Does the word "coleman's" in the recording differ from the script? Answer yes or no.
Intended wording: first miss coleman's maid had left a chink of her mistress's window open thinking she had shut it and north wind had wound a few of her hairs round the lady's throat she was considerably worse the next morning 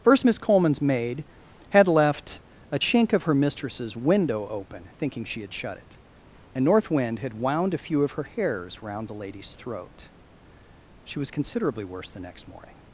no